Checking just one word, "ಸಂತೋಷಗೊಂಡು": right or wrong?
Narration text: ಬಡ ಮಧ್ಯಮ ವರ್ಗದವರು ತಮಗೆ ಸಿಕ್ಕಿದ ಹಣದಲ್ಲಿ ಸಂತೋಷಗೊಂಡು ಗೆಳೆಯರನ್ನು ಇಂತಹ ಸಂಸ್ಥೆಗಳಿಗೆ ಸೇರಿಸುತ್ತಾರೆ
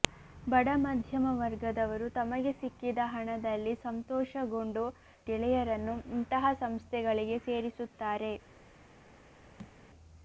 right